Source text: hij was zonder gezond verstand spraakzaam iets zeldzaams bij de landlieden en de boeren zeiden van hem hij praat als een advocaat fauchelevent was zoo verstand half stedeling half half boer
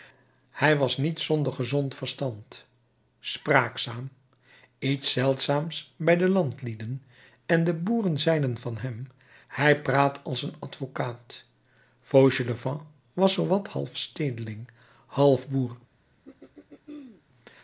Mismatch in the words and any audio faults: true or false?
true